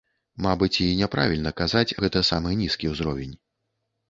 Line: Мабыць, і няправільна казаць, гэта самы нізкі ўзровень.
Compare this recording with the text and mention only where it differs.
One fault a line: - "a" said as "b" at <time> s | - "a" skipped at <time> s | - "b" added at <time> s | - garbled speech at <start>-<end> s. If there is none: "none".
none